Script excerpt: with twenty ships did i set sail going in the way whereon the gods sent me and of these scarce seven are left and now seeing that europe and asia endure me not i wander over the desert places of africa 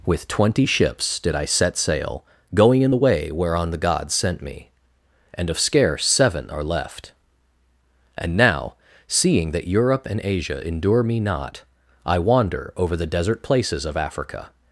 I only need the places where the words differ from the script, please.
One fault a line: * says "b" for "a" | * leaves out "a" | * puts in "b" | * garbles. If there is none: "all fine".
* leaves out "these"